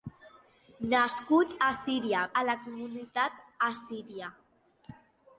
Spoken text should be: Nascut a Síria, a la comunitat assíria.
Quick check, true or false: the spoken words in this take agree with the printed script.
true